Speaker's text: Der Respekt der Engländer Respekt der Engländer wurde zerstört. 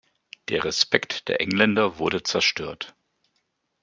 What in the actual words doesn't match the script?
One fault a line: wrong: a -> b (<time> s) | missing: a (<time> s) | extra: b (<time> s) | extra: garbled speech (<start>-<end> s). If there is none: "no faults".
missing: Respekt der Engländer (2.0 s)